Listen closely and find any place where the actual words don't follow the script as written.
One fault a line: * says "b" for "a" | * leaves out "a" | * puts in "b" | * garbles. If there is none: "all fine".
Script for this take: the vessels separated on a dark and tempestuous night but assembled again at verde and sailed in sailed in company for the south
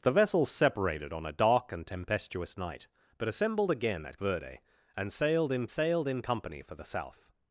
all fine